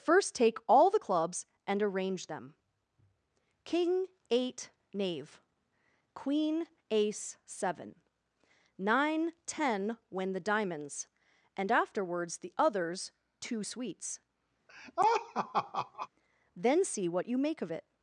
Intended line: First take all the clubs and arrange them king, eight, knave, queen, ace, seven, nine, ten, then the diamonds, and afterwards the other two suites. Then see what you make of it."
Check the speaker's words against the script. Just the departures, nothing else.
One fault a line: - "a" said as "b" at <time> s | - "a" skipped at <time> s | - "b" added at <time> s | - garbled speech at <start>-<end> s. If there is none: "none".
- "then" said as "when" at 10.1 s
- "other" said as "others" at 12.6 s